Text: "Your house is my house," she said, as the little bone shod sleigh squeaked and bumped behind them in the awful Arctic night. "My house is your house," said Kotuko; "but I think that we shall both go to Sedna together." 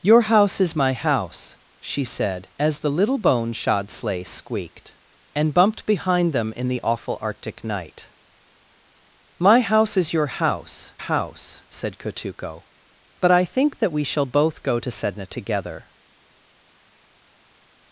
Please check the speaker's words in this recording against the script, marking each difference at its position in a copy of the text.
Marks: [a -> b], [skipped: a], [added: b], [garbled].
"Your house is my house," she said, as the little bone shod sleigh squeaked and bumped behind them in the awful Arctic night. "My house is your house," [added: house] said Kotuko; "but I think that we shall both go to Sedna together."